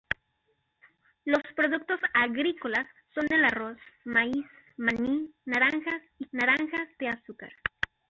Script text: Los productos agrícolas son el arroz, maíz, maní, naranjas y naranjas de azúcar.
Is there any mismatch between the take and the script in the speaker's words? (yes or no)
no